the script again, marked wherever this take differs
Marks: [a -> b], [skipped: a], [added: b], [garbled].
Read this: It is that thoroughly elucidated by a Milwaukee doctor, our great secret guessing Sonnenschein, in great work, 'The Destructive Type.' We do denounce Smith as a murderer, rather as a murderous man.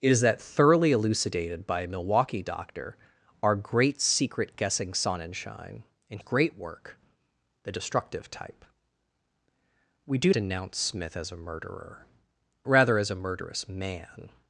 It is that thoroughly elucidated by a Milwaukee doctor, our great secret guessing Sonnenschein, in great work, 'The Destructive Type.' We do denounce Smith as a murderer, rather as a murderous man.